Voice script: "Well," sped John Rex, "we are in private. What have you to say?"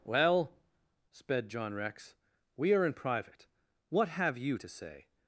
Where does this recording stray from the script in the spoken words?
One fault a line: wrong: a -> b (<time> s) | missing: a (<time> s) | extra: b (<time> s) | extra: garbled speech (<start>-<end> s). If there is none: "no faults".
no faults